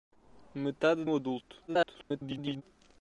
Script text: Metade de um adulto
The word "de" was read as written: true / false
false